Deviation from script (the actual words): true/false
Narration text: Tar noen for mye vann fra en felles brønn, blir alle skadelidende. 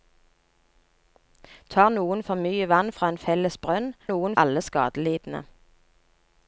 true